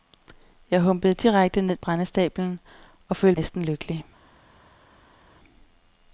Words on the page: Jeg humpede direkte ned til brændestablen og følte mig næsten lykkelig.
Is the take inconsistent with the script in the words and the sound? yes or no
yes